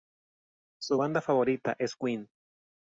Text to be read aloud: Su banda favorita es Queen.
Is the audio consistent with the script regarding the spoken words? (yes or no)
yes